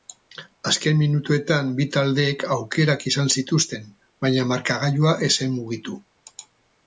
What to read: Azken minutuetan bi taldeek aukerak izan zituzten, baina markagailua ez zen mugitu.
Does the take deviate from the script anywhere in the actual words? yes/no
no